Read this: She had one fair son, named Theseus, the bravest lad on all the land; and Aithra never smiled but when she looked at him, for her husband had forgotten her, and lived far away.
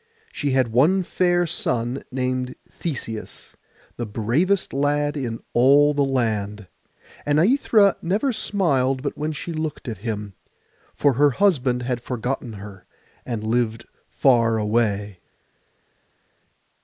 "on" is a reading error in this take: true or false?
true